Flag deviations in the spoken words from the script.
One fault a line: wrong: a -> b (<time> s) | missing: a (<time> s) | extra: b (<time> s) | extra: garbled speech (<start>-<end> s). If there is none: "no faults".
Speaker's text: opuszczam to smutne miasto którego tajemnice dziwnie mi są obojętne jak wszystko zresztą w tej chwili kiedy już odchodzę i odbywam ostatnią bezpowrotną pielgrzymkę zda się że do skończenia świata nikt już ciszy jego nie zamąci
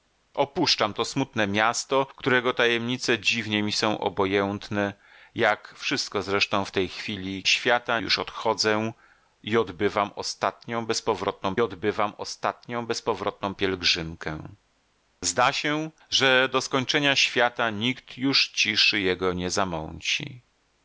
wrong: kiedy -> świata (7.5 s)
extra: odbywam ostatnią bezpowrotną (11.6 s)